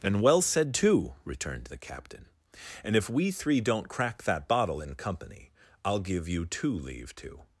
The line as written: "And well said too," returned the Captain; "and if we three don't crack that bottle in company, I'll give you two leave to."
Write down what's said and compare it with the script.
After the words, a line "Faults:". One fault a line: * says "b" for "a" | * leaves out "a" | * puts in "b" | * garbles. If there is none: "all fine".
"And well said too," returned the Captain; "and if we three don't crack that bottle in company, I'll give you two leave to."
Faults:
all fine